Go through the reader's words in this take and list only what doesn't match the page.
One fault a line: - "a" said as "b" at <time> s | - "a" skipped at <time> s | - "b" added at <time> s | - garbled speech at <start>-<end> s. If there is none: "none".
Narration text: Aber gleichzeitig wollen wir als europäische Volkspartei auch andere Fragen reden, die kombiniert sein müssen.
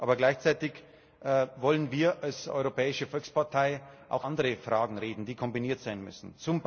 none